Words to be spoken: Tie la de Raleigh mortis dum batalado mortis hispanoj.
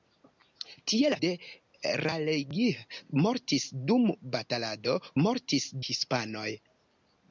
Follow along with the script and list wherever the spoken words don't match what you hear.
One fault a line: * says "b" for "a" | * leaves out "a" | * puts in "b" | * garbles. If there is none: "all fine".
all fine